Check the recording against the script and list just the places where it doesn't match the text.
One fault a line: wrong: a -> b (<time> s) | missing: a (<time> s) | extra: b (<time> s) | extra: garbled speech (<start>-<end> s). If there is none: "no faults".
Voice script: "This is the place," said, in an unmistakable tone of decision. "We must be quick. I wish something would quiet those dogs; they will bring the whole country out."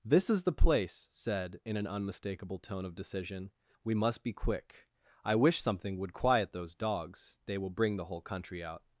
no faults